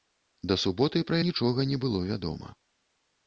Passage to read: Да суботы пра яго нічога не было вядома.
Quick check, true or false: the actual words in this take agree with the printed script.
false